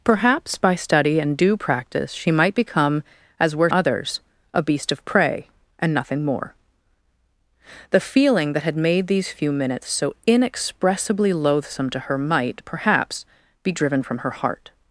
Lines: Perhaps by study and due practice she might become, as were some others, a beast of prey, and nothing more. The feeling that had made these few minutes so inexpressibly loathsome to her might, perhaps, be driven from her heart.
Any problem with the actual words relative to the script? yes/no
yes